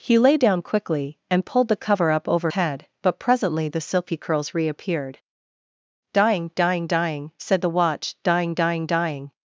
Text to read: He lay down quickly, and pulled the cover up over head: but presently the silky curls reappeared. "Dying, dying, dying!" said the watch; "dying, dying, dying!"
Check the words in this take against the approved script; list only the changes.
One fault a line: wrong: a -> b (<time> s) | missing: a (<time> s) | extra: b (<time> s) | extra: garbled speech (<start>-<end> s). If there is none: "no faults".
no faults